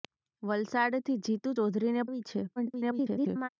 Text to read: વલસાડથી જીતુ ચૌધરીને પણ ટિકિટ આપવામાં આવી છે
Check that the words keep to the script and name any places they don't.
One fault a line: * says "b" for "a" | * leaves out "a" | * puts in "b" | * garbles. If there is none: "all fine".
* leaves out "પણ ટિકિટ આપવામાં"
* garbles